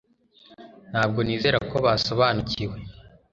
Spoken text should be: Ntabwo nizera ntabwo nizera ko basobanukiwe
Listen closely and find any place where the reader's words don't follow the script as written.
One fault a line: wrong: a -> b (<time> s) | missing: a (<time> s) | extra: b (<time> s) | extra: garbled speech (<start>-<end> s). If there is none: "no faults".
missing: ntabwo nizera (1.6 s)